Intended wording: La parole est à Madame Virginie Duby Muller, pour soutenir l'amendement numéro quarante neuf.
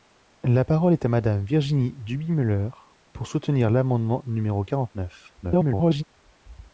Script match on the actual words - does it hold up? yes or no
no